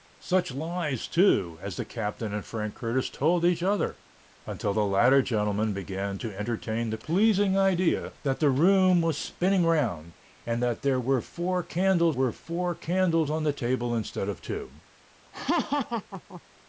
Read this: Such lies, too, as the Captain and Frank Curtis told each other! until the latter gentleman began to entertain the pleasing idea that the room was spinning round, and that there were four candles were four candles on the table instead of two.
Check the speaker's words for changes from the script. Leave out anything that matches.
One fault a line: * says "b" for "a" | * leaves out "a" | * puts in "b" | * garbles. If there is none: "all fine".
all fine